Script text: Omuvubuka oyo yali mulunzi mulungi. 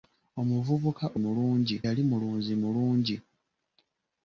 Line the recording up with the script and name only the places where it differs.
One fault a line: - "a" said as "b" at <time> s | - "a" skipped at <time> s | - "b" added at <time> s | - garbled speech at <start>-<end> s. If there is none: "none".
- "oyo" said as "mulungi" at 1.2 s